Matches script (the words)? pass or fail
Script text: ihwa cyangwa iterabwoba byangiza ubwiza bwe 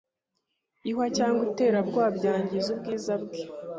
pass